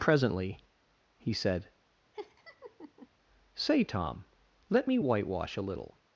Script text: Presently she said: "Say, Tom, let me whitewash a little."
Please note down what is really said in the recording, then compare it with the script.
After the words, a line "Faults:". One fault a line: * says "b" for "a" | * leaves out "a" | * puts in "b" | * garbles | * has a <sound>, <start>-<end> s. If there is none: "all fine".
Presently he said: "Say, Tom, let me whitewash a little."
Faults:
* says "he" for "she"
* has a laugh, 2.1-3.1 s